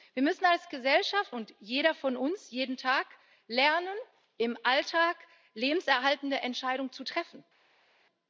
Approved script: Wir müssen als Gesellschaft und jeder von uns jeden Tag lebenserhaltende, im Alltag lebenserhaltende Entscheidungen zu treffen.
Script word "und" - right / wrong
right